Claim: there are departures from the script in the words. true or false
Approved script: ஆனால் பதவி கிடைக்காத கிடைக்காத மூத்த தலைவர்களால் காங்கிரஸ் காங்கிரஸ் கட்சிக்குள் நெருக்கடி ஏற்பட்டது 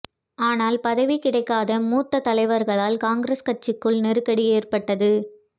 true